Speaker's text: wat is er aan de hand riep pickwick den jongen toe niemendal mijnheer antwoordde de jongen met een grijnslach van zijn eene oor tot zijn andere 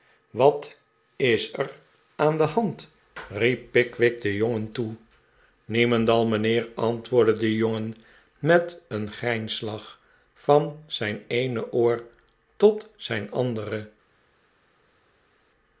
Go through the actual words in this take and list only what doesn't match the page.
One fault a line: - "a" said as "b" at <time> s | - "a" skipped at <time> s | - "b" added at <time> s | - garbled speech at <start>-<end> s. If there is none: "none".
none